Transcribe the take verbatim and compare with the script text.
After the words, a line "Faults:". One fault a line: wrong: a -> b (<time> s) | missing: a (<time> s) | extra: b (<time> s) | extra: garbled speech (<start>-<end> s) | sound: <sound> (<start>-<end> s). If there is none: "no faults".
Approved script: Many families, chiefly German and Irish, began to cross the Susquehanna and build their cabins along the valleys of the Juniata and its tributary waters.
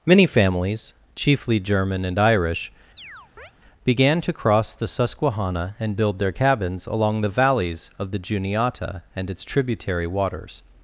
Many families, chiefly German and Irish, began to cross the Susquehanna and build their cabins along the valleys of the Juniata and its tributary waters.
Faults:
sound: chirp (3.0-3.5 s)